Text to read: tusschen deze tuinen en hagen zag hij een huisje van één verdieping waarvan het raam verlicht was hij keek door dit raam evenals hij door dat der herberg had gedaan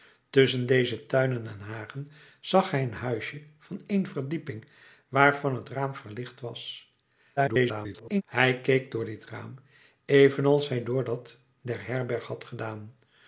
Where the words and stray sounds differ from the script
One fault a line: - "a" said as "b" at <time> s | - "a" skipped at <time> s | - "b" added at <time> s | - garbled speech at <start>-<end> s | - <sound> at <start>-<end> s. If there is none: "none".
- garbled speech at 7.4-8.2 s